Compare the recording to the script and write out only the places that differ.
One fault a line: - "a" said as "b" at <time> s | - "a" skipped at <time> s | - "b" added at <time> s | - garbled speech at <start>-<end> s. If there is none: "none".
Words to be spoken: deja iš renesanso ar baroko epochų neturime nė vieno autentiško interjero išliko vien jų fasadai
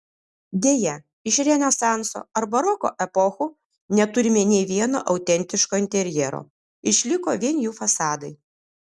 none